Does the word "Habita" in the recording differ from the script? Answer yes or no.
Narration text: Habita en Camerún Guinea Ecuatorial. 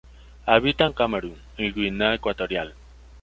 no